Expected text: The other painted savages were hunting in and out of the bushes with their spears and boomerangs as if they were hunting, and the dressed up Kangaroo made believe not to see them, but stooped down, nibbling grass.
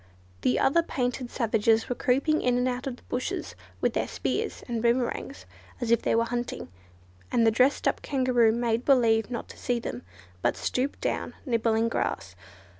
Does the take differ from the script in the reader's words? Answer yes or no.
yes